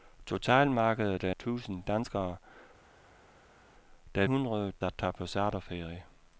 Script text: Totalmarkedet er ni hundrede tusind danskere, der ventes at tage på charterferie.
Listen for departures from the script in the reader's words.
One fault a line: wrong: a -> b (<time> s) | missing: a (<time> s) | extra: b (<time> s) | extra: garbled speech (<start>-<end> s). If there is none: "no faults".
missing: ni hundrede (1.3 s)
wrong: ventes -> hundrede (4.2 s)